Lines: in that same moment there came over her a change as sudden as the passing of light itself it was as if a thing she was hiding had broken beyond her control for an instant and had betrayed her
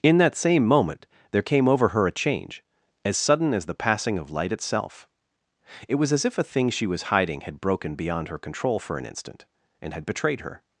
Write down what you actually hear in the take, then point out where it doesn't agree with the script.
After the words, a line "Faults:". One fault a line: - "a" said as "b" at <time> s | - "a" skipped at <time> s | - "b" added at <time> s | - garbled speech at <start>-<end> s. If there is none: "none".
in that same moment there came over her a change as sudden as the passing of light itself it was as if a thing she was hiding had broken beyond her control for an instant and had betrayed her
Faults:
none